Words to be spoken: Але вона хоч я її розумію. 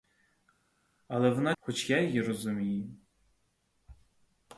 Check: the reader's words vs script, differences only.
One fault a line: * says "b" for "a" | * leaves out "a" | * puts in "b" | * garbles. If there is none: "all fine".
all fine